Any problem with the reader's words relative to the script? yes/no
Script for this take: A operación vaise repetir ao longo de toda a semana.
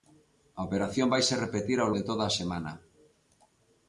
yes